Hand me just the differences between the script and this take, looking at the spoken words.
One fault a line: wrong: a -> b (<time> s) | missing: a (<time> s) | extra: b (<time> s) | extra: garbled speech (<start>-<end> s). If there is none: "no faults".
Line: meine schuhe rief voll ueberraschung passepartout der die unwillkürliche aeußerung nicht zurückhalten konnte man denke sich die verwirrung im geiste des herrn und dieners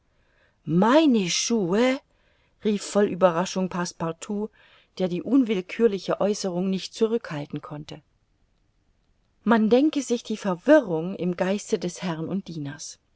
no faults